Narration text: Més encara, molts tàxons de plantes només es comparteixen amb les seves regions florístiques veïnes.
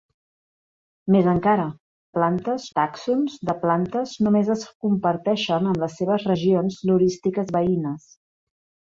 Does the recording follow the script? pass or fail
fail